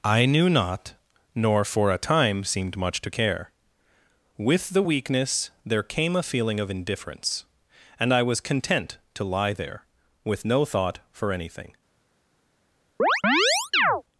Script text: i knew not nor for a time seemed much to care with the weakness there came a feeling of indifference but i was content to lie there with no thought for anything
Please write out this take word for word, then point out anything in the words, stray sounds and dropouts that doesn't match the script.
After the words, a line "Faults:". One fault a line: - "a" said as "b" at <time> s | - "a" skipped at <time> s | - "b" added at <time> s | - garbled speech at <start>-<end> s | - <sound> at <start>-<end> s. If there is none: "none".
i knew not nor for a time seemed much to care with the weakness there came a feeling of indifference and i was content to lie there with no thought for anything
Faults:
- "but" said as "and" at 8.0 s
- chirp at 13.0-14.0 s